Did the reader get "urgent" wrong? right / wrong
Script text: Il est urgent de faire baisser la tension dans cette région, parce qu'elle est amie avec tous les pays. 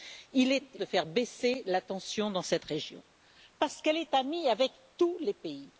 wrong